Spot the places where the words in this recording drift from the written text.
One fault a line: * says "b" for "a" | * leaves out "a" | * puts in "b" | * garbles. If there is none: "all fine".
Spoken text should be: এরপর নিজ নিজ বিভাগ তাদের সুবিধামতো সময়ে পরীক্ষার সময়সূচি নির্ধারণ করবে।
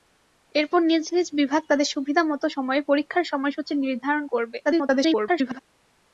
* garbles